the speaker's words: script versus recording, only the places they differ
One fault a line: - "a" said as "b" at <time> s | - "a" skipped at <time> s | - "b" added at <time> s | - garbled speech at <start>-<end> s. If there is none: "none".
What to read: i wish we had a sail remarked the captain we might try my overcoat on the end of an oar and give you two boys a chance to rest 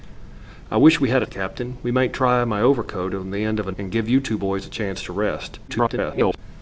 - "sail remarked" skipped at 1.3 s
- "oar" skipped at 3.8 s
- garbled speech at 5.7-6.4 s